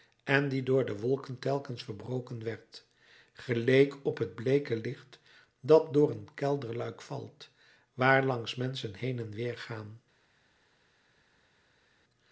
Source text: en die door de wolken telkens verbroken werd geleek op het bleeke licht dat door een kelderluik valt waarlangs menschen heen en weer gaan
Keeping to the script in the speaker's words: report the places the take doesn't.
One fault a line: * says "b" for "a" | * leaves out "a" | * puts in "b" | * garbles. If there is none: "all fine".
all fine